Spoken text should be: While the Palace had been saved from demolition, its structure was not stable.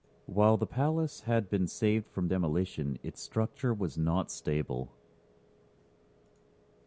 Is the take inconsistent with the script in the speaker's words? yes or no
no